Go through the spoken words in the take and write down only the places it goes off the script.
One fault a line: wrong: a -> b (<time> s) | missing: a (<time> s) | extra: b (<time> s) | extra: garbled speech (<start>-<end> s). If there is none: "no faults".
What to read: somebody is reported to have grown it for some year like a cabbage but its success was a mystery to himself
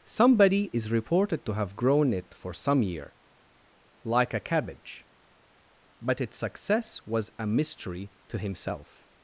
no faults